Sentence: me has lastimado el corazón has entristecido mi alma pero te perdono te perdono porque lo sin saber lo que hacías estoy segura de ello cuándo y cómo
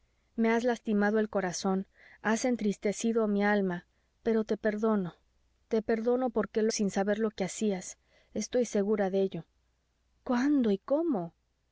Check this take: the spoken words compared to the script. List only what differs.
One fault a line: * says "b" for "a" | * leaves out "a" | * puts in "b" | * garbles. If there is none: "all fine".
all fine